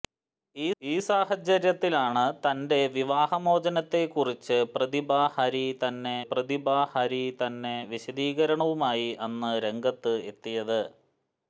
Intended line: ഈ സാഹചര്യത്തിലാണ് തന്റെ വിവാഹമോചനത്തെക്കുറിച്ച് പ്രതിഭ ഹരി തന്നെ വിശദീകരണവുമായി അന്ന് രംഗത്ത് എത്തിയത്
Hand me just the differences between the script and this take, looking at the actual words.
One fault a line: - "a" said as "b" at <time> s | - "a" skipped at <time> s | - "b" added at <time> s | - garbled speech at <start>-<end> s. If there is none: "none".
- "ഈ" added at 0.8 s
- "പ്രതിഭ ഹരി തന്നെ" added at 6.3 s